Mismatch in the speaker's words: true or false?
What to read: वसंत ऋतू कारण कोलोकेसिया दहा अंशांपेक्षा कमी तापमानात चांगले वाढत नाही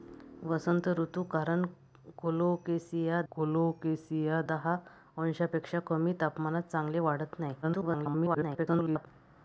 true